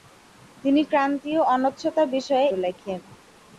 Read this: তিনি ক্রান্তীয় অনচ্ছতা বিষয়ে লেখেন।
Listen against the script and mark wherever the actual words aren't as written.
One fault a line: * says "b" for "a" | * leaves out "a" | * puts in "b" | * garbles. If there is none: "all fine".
all fine